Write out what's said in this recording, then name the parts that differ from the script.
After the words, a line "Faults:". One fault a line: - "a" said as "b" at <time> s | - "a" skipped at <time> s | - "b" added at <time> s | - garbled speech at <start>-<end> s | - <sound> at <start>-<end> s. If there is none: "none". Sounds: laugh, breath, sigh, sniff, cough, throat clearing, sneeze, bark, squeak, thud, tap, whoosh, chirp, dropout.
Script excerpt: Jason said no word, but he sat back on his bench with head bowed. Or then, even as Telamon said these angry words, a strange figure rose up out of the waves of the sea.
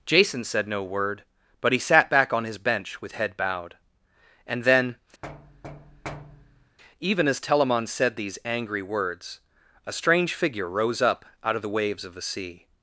Jason said no word, but he sat back on his bench with head bowed. And then, even as Telamon said these angry words, a strange figure rose up out of the waves of the sea.
Faults:
- "Or" said as "And" at 4.5 s
- thud at 5.2-6.8 s